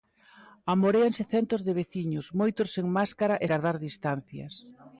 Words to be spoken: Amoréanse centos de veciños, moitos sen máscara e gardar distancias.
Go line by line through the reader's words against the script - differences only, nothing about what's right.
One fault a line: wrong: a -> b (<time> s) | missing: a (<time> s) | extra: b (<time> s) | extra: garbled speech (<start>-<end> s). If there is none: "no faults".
no faults